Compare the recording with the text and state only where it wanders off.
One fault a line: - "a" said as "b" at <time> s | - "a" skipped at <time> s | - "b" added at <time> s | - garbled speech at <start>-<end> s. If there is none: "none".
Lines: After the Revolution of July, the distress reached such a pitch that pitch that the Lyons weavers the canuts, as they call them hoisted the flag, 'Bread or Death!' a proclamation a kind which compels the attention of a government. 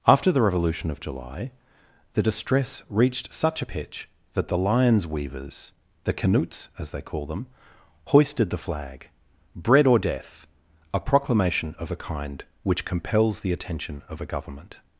- "pitch that" skipped at 4.5 s
- "of" added at 11.8 s